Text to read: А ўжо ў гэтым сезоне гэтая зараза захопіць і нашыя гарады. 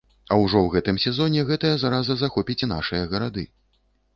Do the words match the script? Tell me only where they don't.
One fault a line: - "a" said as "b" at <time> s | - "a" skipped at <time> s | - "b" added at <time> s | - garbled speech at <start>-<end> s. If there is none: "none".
none